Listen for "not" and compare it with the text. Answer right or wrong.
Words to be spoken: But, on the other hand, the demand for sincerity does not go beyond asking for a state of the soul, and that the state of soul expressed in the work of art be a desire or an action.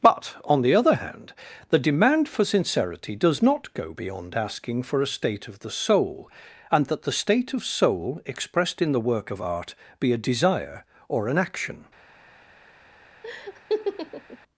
right